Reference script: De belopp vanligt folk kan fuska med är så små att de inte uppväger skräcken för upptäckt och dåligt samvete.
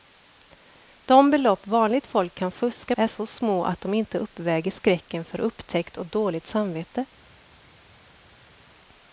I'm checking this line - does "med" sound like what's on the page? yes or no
no